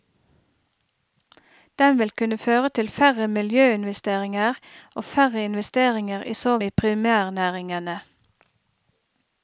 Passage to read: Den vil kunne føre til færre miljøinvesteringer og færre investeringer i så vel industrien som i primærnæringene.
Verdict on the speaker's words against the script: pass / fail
fail